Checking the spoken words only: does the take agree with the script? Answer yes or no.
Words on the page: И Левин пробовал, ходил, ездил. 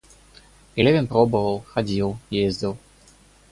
yes